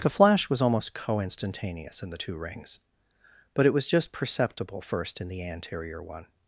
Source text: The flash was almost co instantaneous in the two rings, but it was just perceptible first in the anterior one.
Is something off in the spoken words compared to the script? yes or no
no